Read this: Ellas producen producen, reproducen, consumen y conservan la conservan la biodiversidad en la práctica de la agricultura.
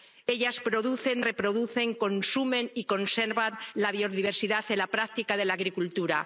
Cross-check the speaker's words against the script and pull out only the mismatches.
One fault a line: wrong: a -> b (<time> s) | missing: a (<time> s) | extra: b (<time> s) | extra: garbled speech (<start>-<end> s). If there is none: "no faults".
missing: producen (1.2 s)
missing: conservan la (3.9 s)